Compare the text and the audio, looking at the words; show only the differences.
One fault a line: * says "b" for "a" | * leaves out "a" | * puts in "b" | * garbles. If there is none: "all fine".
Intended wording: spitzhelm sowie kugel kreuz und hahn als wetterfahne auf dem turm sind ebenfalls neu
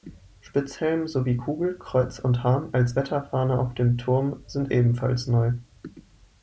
all fine